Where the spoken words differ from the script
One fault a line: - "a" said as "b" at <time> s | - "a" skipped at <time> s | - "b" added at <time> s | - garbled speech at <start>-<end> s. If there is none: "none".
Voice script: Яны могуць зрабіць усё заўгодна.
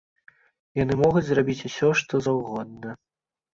- "што" added at 2.0 s